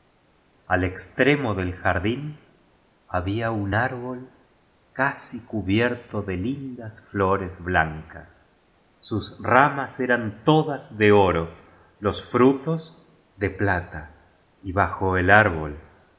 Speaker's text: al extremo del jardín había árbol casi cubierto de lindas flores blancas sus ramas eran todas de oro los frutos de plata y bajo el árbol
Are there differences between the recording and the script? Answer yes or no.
yes